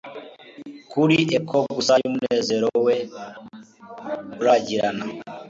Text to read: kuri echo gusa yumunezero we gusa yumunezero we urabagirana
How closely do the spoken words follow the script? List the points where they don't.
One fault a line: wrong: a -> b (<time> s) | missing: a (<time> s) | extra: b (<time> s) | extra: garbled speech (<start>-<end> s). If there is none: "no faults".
missing: gusa yumunezero we (3.0 s)